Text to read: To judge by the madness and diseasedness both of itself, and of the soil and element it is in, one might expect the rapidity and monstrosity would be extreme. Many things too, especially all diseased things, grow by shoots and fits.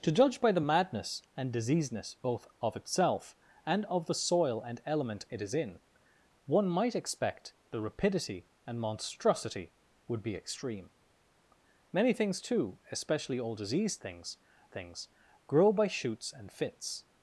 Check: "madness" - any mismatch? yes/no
no